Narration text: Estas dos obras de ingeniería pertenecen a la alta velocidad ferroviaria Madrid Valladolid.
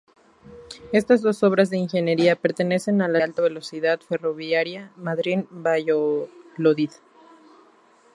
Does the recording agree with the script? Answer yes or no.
yes